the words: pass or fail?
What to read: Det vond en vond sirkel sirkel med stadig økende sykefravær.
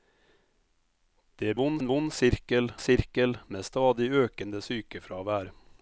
pass